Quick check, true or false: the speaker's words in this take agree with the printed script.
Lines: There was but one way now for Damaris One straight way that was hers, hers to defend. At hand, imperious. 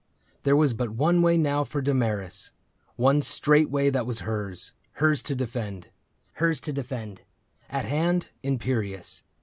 false